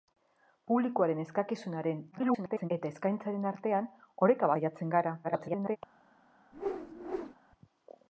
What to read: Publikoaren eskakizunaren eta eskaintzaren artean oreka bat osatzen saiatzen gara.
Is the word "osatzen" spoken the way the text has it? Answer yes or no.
no